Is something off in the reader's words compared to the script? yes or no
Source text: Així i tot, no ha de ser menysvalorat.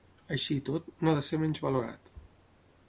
no